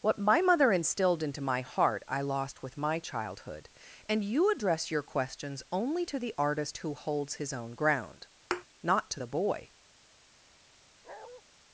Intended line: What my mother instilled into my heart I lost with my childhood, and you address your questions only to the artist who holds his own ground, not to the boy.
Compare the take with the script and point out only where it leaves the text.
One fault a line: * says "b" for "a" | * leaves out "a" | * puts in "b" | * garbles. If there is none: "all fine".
all fine